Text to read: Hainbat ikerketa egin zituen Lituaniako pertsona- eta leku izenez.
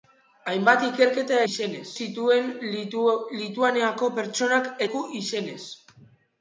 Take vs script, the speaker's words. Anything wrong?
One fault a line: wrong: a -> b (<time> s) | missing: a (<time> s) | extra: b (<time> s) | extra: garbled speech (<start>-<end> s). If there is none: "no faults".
wrong: egin -> izenez (1.5 s)
missing: eta (4.7 s)